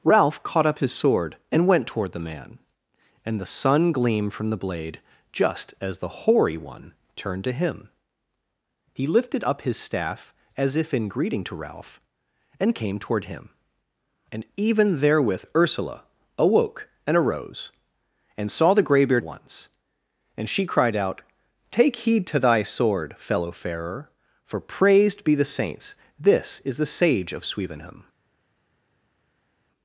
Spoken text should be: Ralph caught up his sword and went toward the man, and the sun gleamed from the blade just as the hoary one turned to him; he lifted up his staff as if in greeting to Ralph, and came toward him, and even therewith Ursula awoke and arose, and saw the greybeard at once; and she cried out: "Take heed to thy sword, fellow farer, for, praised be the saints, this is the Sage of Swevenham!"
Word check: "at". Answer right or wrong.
wrong